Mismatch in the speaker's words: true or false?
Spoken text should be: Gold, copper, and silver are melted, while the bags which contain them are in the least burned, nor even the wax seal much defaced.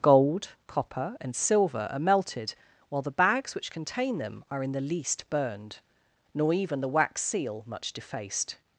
false